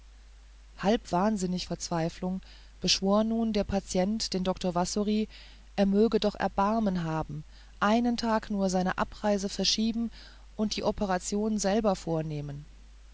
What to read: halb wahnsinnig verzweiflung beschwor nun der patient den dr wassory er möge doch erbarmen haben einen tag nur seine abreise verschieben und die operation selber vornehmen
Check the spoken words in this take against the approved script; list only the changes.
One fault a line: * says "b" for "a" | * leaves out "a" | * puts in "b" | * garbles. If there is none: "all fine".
all fine